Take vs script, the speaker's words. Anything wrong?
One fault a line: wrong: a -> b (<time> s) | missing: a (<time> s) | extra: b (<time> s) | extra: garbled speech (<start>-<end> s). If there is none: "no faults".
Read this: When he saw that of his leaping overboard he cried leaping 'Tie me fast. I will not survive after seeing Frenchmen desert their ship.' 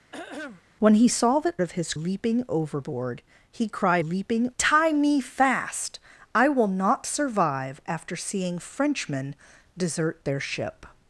no faults